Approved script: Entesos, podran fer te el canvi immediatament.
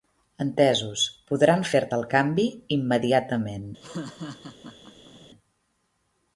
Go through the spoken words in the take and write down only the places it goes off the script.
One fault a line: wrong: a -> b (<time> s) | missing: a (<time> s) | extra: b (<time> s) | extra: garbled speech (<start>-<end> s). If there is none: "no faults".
no faults